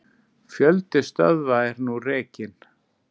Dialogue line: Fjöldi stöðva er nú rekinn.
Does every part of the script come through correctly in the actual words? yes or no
yes